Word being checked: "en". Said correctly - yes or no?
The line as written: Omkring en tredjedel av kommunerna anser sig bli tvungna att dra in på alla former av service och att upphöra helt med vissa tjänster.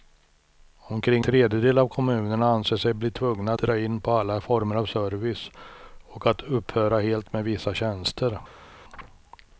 no